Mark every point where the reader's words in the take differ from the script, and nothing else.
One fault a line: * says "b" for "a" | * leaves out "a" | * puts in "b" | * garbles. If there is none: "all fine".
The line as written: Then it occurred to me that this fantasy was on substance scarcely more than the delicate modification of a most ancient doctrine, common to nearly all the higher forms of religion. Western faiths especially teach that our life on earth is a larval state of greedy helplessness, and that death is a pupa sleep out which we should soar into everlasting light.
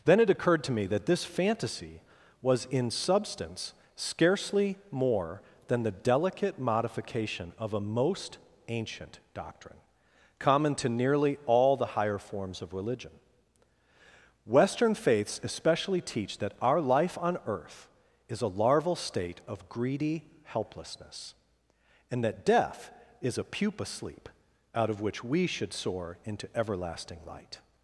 * says "in" for "on"
* puts in "of"